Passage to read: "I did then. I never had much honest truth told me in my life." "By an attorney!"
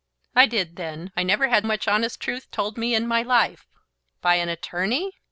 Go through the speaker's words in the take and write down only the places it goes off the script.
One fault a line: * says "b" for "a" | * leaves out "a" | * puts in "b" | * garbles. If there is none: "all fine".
all fine